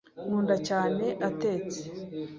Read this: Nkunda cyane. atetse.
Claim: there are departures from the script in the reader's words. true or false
false